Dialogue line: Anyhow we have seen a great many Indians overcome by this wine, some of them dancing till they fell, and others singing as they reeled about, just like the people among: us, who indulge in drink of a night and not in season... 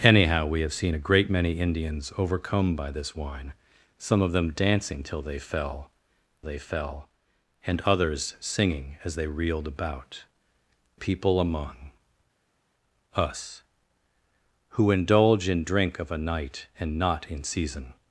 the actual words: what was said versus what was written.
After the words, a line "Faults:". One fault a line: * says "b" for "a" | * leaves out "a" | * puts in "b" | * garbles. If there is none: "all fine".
Anyhow we have seen a great many Indians overcome by this wine, some of them dancing till they fell they fell, and others singing as they reeled about, people among: us, who indulge in drink of a night and not in season...
Faults:
* puts in "they fell"
* leaves out "just like the"